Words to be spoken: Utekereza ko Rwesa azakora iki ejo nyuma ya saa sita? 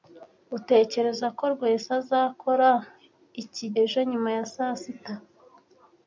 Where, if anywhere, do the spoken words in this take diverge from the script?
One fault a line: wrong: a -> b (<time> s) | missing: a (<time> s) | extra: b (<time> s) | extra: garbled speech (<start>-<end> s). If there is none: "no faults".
no faults